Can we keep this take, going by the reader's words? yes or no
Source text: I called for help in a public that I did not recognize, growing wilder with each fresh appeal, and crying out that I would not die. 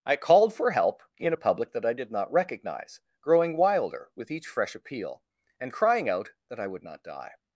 yes